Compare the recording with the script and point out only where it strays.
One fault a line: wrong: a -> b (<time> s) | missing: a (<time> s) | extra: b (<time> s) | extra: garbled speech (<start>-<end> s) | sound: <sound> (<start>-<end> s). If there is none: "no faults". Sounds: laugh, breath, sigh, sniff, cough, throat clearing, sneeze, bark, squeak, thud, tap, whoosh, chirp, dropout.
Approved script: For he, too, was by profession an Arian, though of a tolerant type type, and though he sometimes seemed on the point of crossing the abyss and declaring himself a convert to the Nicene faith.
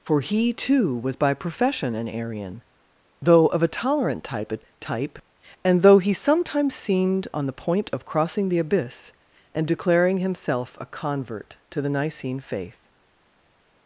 no faults